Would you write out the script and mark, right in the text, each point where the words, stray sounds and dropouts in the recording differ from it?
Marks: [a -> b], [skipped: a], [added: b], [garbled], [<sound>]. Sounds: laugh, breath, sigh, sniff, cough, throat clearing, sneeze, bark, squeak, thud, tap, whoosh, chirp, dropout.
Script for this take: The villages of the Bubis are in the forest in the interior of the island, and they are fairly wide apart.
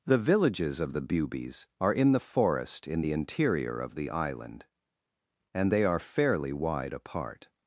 The villages of the Bubis are in the forest in the interior of the island, and they are fairly wide apart.